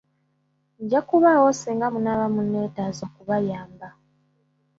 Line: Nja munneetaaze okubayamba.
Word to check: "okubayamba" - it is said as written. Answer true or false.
true